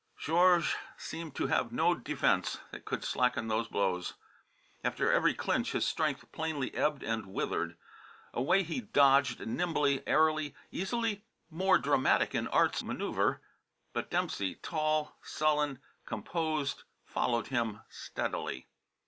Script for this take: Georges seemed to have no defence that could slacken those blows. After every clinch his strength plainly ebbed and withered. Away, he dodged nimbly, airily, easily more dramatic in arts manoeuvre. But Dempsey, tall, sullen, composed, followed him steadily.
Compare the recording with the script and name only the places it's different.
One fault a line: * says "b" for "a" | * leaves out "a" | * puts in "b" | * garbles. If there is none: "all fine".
all fine